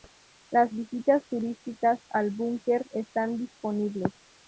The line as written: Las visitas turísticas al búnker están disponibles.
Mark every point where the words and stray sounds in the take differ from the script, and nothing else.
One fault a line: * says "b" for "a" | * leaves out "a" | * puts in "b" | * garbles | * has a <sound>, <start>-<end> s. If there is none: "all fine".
all fine